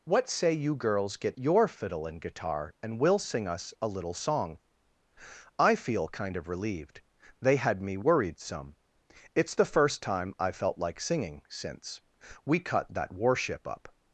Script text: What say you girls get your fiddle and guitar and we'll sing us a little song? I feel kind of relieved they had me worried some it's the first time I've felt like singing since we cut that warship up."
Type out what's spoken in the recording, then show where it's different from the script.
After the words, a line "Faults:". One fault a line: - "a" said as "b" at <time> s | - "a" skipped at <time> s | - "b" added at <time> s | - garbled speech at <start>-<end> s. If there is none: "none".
What say you girls get your fiddle and guitar and we'll sing us a little song? I feel kind of relieved they had me worried some it's the first time I've felt like singing since we cut that warship up."
Faults:
none